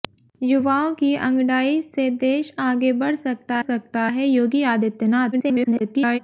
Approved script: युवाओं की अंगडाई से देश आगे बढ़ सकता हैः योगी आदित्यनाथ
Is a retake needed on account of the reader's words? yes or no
yes